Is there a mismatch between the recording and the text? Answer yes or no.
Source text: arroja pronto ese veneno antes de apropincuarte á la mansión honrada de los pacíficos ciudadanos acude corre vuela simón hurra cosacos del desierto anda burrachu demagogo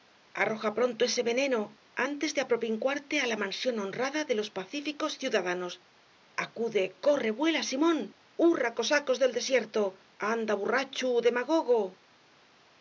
no